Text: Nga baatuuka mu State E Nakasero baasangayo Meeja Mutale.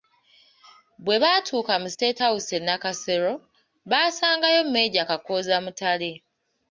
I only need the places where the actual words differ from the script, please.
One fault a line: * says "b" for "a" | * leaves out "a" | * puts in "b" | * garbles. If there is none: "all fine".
* says "Bwe" for "Nga"
* puts in "House"
* puts in "Kakooza"